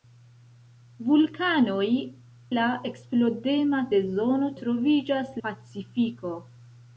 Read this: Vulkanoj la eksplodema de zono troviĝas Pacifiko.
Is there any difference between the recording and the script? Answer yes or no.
no